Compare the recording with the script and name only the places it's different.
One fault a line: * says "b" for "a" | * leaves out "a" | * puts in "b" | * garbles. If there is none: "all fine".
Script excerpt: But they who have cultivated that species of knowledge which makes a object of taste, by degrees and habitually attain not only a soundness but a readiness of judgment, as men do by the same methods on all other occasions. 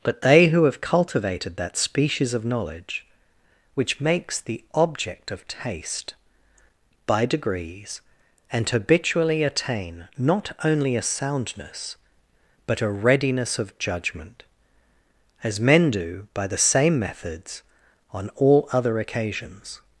* says "the" for "a"